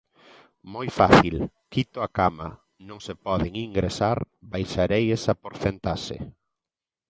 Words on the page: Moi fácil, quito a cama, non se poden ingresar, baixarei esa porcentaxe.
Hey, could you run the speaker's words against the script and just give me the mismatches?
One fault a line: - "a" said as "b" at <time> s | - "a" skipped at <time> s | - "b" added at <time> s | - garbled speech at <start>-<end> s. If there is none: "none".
none